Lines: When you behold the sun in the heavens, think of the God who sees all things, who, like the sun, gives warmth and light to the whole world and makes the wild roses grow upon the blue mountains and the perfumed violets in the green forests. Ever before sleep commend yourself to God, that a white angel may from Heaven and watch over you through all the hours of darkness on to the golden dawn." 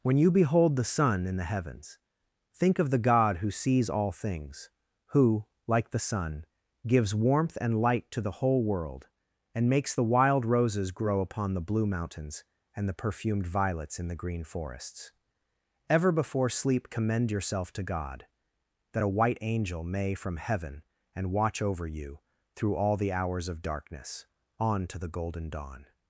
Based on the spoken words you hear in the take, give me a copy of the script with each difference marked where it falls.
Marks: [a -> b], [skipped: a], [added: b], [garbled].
When you behold the sun in the heavens, think of the God who sees all things, who, like the sun, gives warmth and light to the whole world and makes the wild roses grow upon the blue mountains and the perfumed violets in the green forests. Ever before sleep commend yourself to God, that a white angel may from Heaven and watch over you through all the hours of darkness on to the golden dawn."